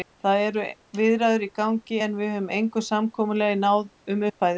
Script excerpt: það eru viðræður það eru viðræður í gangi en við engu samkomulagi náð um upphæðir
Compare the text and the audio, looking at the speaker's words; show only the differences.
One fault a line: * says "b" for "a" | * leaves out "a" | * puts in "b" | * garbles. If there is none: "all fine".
* leaves out "það eru viðræður"
* puts in "höfum"